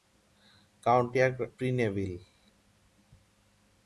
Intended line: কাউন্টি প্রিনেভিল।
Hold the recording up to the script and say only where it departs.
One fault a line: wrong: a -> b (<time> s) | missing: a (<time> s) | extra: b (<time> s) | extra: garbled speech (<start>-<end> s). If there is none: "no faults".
no faults